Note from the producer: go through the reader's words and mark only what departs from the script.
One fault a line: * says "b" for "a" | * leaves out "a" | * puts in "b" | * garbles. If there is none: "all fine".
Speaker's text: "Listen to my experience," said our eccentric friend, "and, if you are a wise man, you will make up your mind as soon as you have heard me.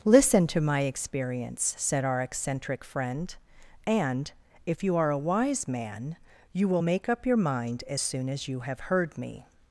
all fine